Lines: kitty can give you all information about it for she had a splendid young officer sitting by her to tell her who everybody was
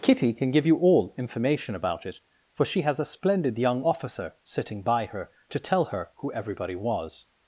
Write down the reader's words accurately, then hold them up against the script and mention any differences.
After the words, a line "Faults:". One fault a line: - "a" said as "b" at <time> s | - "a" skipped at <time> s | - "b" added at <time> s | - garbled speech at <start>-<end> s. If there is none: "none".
kitty can give you all information about it for she has a splendid young officer sitting by her to tell her who everybody was
Faults:
- "had" said as "has" at 2.8 s